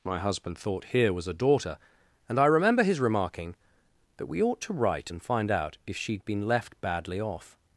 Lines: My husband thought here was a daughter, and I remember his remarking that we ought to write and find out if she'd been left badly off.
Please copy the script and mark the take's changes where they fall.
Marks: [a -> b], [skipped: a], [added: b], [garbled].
My husband thought here was a daughter, and I remember his remarking that we ought to write and find out if she'd been left badly off.